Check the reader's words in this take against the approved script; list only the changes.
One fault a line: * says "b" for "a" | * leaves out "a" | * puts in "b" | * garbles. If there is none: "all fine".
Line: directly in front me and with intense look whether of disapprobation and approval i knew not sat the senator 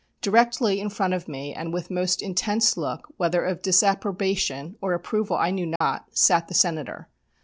* puts in "of"
* puts in "most"
* says "or" for "and"